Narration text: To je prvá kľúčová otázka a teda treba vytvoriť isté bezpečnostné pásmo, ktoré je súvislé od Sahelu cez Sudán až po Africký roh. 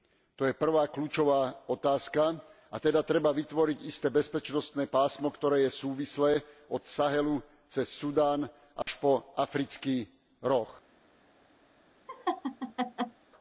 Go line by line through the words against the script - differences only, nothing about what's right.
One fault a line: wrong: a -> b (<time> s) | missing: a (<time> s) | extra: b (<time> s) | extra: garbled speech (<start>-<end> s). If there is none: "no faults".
no faults